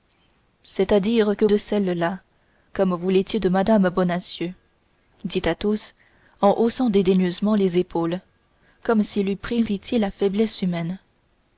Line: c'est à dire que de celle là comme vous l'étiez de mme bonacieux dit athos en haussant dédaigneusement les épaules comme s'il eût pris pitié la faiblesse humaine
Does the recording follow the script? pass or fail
pass